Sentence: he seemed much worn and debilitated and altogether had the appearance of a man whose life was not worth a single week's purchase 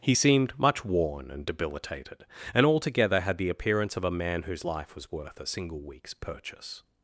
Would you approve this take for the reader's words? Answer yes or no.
no